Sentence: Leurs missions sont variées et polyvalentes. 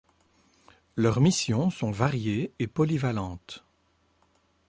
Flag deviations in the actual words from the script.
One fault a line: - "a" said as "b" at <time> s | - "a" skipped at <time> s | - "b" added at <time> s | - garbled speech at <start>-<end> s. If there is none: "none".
none